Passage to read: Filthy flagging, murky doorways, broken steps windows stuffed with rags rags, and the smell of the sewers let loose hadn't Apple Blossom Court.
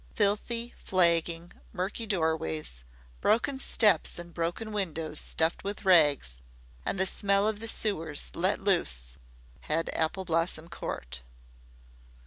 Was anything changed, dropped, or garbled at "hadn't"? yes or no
yes